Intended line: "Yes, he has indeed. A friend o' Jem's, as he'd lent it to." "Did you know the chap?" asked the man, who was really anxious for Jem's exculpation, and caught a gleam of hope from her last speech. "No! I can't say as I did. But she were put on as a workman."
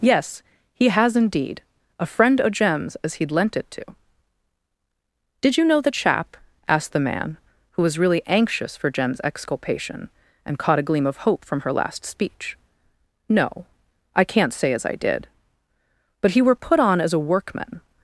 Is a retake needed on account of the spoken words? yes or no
yes